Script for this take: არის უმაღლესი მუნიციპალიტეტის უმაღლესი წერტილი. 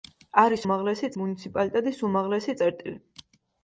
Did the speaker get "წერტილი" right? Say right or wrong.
right